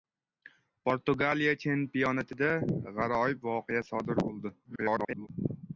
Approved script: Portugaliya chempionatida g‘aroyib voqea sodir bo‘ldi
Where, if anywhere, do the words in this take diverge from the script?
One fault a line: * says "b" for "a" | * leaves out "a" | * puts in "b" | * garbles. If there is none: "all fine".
* garbles